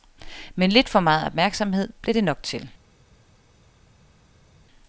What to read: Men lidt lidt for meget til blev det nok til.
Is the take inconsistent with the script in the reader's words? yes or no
yes